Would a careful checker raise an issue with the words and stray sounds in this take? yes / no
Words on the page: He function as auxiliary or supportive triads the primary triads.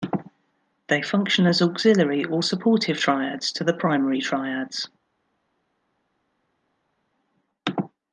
yes